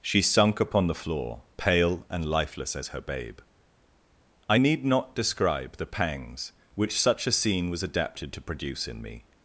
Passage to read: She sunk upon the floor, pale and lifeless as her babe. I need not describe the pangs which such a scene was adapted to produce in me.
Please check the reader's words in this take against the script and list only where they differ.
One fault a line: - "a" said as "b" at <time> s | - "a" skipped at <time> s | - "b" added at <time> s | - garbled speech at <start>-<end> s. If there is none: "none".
none